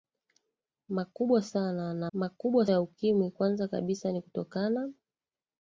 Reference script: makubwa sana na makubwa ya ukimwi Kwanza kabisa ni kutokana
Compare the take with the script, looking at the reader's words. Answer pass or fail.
pass